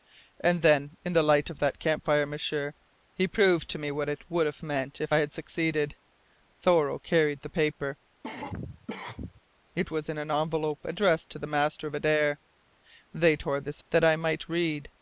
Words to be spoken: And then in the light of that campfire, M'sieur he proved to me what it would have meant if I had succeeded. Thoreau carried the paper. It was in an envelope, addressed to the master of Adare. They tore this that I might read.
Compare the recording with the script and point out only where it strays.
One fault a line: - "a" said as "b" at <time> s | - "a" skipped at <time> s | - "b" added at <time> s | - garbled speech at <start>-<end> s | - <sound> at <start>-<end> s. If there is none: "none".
- cough at 8.2-9.4 s